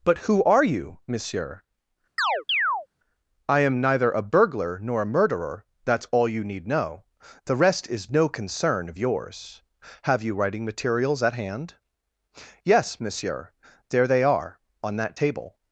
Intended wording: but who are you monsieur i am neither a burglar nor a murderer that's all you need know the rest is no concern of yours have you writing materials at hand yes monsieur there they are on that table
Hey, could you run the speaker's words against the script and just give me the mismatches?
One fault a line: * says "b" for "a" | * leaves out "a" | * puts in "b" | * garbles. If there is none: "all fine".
all fine